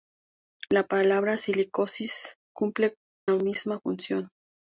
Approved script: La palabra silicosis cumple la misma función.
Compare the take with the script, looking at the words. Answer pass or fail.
fail